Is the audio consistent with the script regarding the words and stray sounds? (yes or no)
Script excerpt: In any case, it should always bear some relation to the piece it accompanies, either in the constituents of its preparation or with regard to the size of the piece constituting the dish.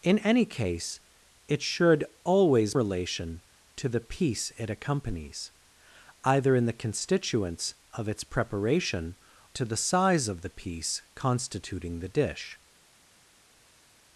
no